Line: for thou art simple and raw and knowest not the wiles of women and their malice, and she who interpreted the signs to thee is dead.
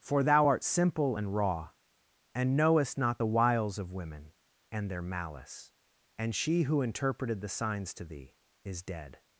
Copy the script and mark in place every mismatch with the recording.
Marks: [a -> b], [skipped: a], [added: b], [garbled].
for thou art simple and raw and knowest not the wiles of women and their malice, and she who interpreted the signs to thee is dead.